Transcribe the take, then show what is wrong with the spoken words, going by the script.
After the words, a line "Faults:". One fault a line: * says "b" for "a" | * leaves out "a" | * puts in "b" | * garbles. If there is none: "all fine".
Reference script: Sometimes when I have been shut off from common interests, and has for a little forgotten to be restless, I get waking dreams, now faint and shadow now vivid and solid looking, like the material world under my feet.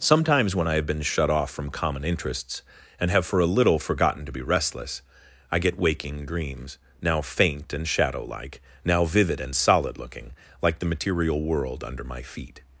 Sometimes when I have been shut off from common interests, and have for a little forgotten to be restless, I get waking dreams, now faint and shadow like, now vivid and solid looking, like the material world under my feet.
Faults:
* says "have" for "has"
* puts in "like"